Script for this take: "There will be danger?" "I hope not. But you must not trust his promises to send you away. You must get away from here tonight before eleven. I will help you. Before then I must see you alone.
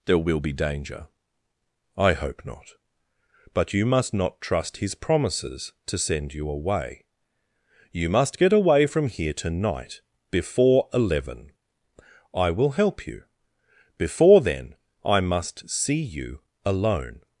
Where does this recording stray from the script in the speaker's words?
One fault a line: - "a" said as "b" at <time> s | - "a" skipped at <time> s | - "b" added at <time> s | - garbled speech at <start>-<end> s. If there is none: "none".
none